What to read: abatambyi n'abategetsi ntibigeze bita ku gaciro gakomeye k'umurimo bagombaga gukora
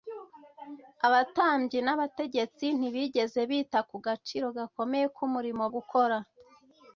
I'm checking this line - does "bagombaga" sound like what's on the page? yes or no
no